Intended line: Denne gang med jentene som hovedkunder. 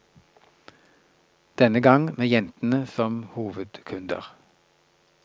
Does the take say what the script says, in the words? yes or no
yes